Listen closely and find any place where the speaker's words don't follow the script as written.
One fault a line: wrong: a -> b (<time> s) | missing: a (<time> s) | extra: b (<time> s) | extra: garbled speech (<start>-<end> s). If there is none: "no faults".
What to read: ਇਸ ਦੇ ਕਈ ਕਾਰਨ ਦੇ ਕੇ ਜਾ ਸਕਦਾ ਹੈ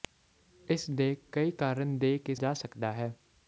no faults